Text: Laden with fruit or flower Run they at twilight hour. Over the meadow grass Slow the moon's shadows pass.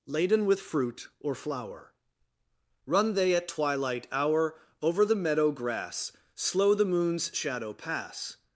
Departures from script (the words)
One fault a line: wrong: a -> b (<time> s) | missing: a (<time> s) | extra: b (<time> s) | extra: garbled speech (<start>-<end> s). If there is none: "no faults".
wrong: shadows -> shadow (7.3 s)